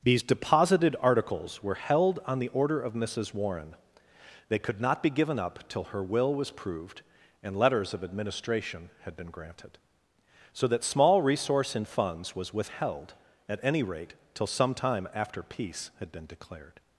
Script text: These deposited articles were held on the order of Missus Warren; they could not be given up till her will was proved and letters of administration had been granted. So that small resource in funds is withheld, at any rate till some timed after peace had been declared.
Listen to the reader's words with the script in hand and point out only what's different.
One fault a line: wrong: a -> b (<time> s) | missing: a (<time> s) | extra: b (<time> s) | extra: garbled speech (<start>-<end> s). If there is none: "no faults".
wrong: is -> was (12.3 s)
wrong: timed -> time (14.7 s)